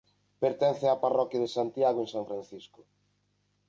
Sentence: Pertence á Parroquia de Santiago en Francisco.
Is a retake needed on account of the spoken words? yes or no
yes